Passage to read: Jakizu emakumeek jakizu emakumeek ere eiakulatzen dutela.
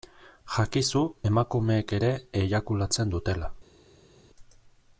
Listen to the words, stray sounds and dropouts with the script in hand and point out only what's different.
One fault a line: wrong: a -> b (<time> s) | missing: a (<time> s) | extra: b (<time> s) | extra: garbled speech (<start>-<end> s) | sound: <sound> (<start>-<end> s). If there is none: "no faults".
missing: jakizu emakumeek (2.0 s)